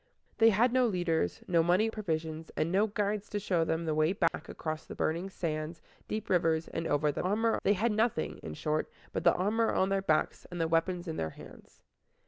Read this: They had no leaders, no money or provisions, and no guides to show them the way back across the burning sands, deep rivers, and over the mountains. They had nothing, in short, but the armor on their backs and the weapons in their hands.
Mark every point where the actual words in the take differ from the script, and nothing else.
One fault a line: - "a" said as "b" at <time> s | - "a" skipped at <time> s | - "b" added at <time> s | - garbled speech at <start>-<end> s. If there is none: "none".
- "or" skipped at 1.9 s
- "mountains" said as "armor" at 7.2 s